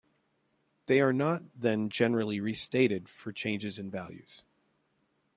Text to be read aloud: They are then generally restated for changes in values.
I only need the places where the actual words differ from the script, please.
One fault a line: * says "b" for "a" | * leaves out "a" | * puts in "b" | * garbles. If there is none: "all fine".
* puts in "not"